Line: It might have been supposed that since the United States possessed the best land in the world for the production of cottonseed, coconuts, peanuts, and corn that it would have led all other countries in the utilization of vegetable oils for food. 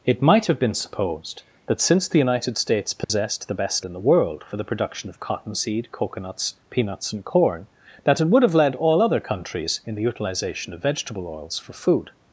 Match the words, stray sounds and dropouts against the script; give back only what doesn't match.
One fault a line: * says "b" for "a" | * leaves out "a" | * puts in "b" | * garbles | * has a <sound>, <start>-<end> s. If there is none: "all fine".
* has a dropout, 3.0-3.1 s
* leaves out "land"